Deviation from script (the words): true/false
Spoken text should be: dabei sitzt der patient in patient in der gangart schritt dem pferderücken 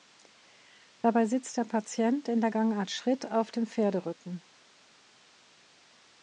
true